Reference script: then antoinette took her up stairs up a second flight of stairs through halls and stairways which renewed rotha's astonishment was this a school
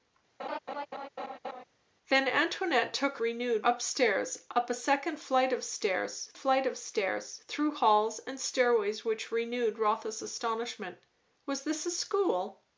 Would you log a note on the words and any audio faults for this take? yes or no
yes